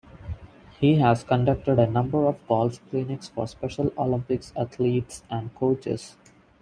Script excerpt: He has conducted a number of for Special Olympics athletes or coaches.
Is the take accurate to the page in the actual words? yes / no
no